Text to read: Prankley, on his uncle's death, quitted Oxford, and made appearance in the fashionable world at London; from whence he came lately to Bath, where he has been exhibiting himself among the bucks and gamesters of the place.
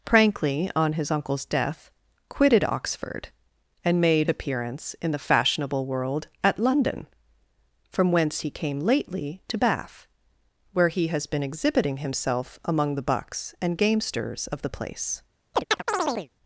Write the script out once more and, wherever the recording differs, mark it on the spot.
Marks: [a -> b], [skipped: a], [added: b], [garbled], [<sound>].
Prankley, on his uncle's death, quitted Oxford, and made appearance in the fashionable world at London; from whence he came lately to Bath, where he has been exhibiting himself among the bucks and gamesters of the place. [chirp]